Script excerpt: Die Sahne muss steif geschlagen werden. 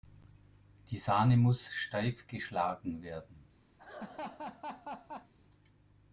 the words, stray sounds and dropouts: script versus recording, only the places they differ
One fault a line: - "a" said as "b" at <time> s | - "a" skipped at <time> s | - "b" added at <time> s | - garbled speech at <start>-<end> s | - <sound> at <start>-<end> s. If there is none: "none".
- laugh at 3.8-5.3 s